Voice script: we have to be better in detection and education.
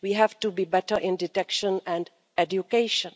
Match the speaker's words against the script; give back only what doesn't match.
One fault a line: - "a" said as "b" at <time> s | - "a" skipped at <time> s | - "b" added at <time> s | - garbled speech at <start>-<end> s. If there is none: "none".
none